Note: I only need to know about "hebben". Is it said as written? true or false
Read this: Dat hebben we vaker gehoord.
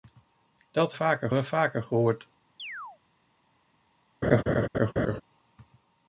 false